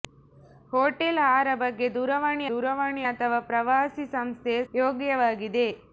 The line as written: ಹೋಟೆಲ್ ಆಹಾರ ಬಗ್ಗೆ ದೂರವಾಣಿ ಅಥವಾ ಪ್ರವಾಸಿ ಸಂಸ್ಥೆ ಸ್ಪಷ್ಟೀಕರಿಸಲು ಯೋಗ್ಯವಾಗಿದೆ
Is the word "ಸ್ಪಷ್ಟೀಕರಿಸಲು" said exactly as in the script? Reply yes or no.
no